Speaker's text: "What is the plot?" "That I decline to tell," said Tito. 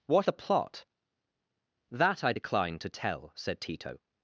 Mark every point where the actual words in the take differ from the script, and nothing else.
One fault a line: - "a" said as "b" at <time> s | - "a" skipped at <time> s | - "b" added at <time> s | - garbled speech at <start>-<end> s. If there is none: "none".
- "is" skipped at 0.3 s